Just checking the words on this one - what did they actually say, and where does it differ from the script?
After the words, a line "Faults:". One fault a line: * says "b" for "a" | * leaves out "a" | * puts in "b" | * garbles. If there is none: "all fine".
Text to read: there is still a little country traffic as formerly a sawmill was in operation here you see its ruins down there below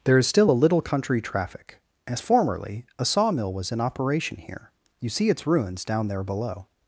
there is still a little country traffic as formerly a sawmill was in operation here you see its ruins down there below
Faults:
all fine